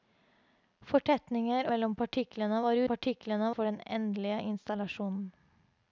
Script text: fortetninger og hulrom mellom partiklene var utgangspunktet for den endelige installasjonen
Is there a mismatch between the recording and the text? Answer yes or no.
yes